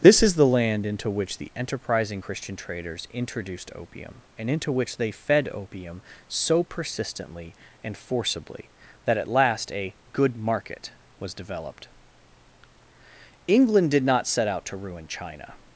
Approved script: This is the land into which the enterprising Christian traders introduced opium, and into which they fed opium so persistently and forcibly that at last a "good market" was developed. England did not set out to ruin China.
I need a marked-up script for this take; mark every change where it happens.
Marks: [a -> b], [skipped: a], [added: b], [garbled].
This is the land into which the enterprising Christian traders introduced opium, and into which they fed opium so persistently and forcibly that at last a "good market" was developed. England did not set out to ruin China.